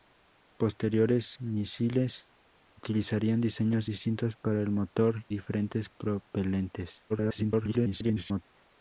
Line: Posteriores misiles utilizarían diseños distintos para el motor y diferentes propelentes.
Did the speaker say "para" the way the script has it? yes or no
yes